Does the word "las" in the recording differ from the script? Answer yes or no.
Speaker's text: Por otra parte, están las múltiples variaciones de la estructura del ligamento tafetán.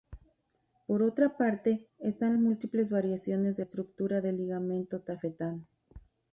yes